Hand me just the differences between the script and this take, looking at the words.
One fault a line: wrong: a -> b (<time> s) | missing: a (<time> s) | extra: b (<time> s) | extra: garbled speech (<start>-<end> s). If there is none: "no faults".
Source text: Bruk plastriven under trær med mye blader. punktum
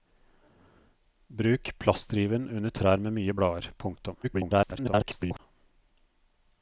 extra: garbled speech (4.2-5.4 s)